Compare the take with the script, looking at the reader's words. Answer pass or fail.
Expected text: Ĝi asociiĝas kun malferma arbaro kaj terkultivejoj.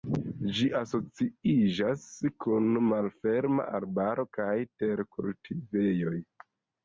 pass